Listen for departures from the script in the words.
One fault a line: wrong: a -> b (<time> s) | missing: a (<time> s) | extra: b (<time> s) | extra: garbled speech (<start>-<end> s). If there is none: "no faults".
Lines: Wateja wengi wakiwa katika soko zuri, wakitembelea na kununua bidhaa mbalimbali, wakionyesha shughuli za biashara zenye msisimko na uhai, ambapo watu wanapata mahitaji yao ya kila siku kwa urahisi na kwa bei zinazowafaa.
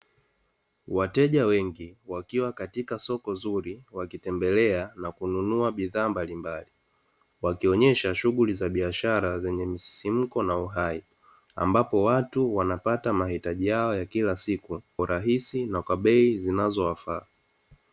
missing: kwa (14.8 s)